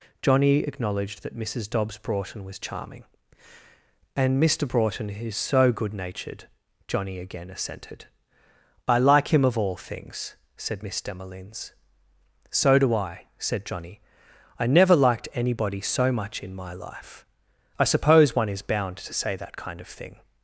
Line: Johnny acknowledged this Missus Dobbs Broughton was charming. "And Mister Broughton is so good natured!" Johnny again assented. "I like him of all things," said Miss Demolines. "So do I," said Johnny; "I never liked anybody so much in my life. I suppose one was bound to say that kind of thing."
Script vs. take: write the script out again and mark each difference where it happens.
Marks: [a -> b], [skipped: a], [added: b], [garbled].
Johnny acknowledged [this -> that] Missus Dobbs Broughton was charming. "And Mister Broughton is so good natured!" Johnny again assented. "I like him of all things," said Miss Demolines. "So do I," said Johnny; "I never liked anybody so much in my life. I suppose one [was -> is] bound to say that kind of thing."